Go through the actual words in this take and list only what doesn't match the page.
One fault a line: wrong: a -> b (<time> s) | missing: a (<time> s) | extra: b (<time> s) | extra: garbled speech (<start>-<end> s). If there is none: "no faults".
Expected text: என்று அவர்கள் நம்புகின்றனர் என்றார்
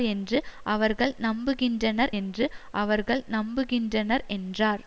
extra: என்று அவர்கள் நம்புகின்றனர் (2.1 s)